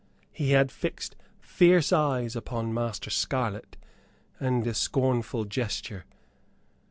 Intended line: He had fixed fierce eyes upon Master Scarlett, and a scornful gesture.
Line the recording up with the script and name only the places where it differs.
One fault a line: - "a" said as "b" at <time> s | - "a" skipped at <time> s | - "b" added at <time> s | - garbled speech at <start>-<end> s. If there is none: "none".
none